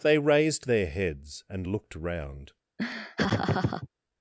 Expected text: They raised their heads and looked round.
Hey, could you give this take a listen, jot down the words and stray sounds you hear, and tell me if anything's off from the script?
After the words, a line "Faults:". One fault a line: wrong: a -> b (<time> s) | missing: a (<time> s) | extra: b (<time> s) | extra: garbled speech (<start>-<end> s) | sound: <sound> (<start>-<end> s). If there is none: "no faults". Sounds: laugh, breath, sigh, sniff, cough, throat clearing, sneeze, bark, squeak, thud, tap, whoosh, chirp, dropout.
They raised their heads and looked round.
Faults:
sound: laugh (2.8-3.9 s)